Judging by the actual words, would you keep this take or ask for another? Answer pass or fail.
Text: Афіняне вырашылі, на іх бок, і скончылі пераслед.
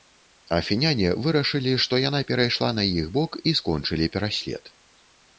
fail